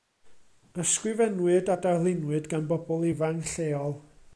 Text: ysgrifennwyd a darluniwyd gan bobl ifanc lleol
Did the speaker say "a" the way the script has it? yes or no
yes